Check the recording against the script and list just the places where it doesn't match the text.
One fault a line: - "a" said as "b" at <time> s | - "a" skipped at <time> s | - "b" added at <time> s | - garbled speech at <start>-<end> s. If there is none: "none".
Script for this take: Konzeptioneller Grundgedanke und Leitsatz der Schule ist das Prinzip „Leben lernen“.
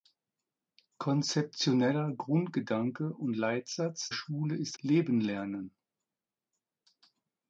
- "der" skipped at 4.1 s
- "das Prinzip" skipped at 4.8 s